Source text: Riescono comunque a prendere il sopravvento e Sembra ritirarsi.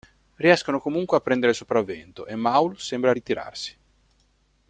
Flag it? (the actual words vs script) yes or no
yes